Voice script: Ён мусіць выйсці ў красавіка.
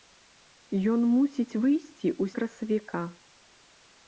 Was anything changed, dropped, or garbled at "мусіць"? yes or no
no